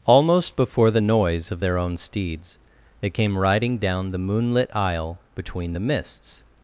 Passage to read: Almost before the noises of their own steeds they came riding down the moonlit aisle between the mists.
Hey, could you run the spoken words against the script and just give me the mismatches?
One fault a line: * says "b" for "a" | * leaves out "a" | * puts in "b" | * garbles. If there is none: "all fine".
* says "noise" for "noises"